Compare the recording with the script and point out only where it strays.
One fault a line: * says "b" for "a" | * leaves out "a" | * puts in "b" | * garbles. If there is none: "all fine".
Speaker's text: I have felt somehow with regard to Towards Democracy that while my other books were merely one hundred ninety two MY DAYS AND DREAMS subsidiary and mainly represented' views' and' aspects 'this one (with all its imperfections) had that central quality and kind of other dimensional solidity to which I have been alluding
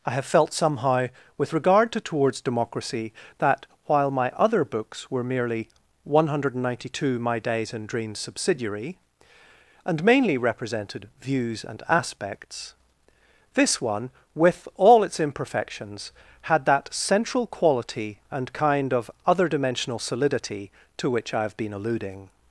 all fine